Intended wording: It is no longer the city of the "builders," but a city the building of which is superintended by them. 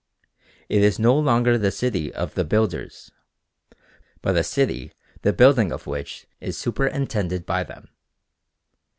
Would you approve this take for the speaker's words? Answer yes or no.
yes